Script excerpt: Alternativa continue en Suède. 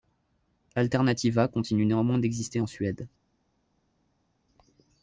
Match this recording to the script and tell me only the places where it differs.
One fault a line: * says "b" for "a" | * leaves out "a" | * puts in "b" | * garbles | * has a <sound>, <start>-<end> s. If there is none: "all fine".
* puts in "néanmoins d'exister"